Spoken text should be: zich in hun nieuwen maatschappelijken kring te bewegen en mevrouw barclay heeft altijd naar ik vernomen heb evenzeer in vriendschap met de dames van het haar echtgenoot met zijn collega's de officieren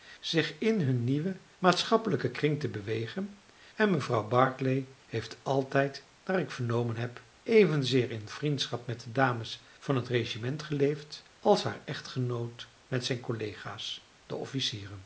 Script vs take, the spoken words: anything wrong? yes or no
yes